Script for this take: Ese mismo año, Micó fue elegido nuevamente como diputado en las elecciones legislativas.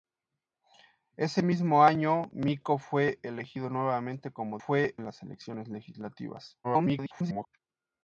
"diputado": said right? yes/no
no